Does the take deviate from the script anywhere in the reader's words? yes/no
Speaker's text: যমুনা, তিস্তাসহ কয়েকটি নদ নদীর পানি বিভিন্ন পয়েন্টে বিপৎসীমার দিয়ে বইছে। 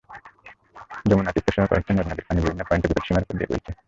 yes